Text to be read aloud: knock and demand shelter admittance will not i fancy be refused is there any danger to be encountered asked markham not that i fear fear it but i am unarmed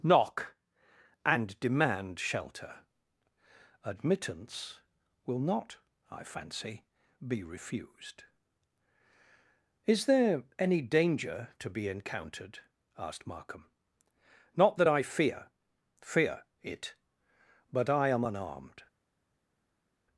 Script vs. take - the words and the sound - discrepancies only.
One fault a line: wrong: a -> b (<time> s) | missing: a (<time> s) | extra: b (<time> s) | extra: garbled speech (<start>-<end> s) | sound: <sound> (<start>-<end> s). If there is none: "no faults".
no faults